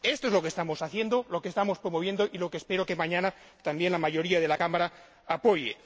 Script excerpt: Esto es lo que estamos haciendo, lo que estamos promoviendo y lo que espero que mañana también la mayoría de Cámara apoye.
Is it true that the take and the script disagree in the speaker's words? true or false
true